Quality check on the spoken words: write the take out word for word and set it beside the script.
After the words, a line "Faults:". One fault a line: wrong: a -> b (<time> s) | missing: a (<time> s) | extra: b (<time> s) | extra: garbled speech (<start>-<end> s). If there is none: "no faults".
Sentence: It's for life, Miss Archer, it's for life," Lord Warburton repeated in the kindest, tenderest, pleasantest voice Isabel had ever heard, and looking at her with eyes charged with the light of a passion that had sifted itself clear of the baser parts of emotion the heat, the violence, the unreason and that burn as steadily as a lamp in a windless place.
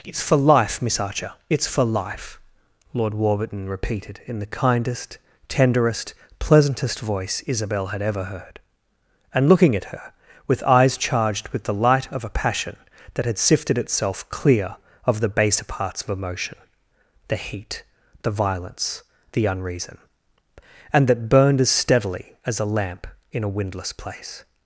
It's for life, Miss Archer, it's for life," Lord Warburton repeated in the kindest, tenderest, pleasantest voice Isabel had ever heard, and looking at her with eyes charged with the light of a passion that had sifted itself clear of the baser parts of emotion the heat, the violence, the unreason and that burned as steadily as a lamp in a windless place.
Faults:
wrong: burn -> burned (21.3 s)